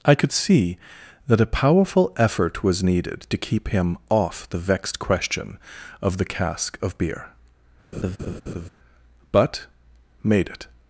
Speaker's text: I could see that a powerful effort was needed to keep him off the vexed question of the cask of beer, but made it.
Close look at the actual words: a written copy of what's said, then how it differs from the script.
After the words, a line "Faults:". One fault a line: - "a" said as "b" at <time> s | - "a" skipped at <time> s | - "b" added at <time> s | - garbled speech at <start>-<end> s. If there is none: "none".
I could see that a powerful effort was needed to keep him off the vexed question of the cask of beer, but made it.
Faults:
none